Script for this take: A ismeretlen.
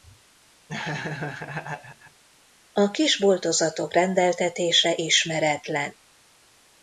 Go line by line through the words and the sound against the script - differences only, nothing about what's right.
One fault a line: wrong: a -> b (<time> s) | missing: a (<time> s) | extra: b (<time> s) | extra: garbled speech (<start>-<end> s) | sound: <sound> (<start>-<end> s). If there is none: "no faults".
sound: laugh (0.7-2.2 s)
extra: kis boltozatok rendeltetése (2.9 s)